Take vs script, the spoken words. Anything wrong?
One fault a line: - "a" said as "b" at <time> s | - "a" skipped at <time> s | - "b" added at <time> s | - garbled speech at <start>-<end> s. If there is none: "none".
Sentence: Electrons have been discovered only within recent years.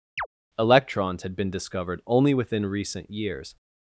- "have" said as "had" at 1.2 s